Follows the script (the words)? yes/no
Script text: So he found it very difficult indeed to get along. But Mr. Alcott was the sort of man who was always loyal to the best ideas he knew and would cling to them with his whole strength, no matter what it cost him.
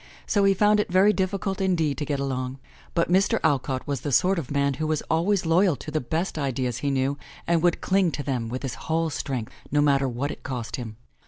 yes